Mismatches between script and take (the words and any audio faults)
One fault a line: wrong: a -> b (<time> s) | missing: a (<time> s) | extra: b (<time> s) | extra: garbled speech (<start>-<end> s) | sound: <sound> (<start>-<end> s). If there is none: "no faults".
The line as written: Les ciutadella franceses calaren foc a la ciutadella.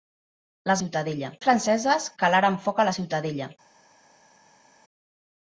no faults